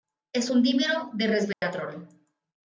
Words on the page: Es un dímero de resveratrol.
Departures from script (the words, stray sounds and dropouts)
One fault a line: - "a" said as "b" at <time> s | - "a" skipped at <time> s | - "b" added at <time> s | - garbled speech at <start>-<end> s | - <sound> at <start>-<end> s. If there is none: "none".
- dropout at 1.5-1.6 s